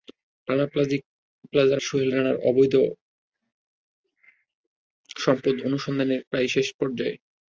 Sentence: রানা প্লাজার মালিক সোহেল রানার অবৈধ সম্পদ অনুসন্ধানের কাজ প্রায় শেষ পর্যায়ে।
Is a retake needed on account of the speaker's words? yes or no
yes